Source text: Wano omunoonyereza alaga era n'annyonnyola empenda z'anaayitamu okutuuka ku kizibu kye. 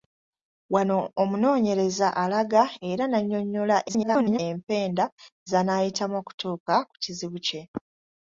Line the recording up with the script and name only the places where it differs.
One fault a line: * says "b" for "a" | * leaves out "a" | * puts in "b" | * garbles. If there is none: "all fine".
* garbles